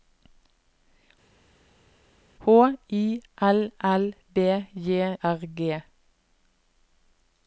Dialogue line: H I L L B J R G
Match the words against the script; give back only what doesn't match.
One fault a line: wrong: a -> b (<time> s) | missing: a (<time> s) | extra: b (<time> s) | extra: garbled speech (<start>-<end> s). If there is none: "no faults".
no faults